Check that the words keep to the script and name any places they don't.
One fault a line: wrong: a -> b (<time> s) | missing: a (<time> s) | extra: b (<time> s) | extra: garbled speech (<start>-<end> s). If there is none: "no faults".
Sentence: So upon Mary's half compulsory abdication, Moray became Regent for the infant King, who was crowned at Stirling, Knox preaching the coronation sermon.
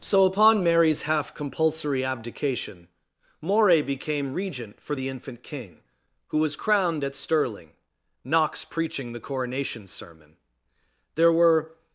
extra: There were (11.2 s)